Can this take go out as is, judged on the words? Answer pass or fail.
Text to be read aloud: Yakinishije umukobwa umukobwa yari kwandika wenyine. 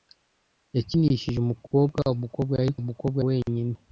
fail